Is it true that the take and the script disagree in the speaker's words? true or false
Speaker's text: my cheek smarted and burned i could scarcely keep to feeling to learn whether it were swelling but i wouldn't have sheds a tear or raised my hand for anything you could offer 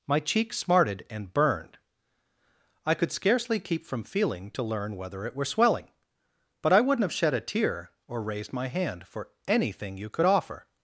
true